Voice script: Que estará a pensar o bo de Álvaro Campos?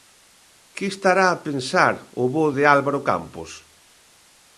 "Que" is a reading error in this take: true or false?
false